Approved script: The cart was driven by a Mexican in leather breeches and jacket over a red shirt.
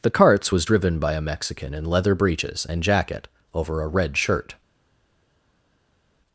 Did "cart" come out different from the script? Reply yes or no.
yes